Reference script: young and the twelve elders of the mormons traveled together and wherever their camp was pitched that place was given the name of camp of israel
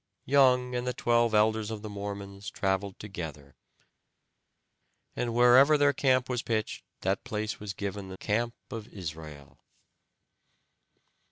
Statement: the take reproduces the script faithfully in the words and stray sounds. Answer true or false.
false